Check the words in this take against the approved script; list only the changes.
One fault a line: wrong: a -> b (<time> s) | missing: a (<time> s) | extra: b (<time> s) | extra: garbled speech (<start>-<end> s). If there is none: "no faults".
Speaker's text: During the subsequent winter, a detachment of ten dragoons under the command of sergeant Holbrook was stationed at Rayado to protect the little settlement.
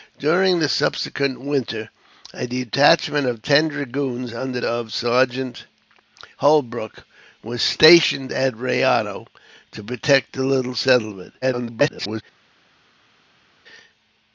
missing: the command (4.6 s)
extra: garbled speech (11.4-12.2 s)